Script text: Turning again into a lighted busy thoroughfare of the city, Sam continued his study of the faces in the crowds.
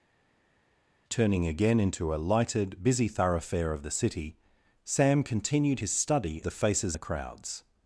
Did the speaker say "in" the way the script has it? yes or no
no